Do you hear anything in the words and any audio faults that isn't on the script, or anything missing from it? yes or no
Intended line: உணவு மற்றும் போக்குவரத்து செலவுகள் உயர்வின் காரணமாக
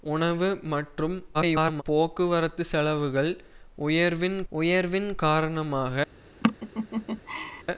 yes